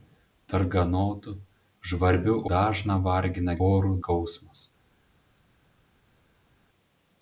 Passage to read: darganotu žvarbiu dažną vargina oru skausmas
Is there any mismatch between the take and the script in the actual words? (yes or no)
no